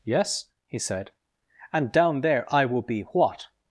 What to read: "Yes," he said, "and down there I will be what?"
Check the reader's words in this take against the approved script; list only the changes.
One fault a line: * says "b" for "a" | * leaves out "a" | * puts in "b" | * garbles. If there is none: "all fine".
all fine